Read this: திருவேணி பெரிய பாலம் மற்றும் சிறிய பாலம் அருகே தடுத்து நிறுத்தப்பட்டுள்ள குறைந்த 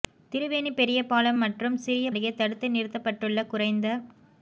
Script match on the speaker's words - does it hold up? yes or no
no